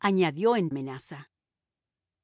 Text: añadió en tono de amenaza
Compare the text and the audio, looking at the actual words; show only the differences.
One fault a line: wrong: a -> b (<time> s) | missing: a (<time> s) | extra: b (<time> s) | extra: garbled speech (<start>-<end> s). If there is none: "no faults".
missing: tono de (0.7 s)